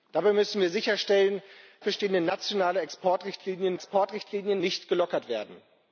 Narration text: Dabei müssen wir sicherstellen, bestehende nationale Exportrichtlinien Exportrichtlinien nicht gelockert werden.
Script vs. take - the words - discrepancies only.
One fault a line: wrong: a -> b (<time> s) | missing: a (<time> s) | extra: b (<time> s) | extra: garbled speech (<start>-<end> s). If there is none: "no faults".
no faults